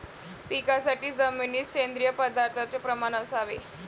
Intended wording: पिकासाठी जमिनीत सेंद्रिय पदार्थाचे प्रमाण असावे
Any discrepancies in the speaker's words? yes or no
no